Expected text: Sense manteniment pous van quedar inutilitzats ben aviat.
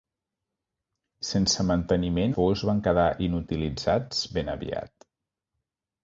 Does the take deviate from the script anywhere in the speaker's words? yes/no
no